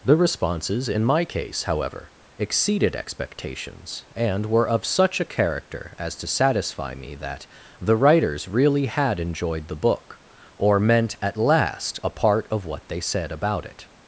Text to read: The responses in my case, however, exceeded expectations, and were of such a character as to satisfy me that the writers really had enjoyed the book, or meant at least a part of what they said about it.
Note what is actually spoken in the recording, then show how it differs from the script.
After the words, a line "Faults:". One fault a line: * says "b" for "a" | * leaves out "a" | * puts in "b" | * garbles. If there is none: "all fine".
The responses in my case, however, exceeded expectations, and were of such a character as to satisfy me that the writers really had enjoyed the book, or meant at last a part of what they said about it.
Faults:
* says "last" for "least"